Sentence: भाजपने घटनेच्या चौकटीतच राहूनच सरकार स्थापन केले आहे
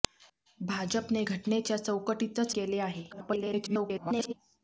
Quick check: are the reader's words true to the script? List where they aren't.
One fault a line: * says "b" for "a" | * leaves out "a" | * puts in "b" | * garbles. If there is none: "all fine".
* leaves out "राहूनच सरकार स्थापन"
* garbles